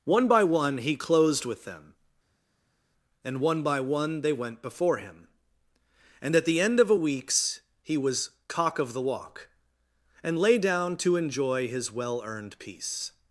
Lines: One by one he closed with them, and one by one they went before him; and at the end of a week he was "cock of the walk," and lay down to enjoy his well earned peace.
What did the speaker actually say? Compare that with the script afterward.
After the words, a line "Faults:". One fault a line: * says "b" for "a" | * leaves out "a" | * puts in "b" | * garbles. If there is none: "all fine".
One by one he closed with them, and one by one they went before him; and at the end of a weeks he was "cock of the walk," and lay down to enjoy his well earned peace.
Faults:
* says "weeks" for "week"